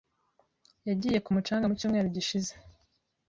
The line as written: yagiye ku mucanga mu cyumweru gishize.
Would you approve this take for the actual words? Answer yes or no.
yes